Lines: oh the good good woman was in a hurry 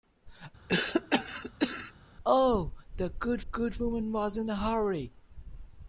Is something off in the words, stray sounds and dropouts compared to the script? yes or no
yes